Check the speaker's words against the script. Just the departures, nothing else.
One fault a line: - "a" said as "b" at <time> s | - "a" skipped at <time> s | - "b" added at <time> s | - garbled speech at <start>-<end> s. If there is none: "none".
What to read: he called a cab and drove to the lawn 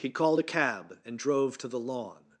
none